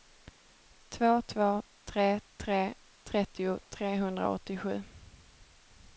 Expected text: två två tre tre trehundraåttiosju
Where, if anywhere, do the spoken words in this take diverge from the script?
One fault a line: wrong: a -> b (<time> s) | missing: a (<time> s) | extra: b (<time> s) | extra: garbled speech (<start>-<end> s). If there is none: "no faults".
extra: trettio (3.0 s)